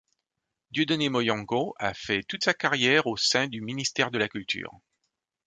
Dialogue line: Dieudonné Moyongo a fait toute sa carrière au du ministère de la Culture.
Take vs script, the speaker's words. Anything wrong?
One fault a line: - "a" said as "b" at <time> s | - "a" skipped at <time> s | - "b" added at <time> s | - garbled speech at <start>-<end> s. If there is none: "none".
- "sein" added at 3.2 s